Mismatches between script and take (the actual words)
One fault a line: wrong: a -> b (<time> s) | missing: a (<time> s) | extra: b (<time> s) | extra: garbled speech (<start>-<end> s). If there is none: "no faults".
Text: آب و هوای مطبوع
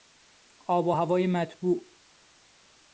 no faults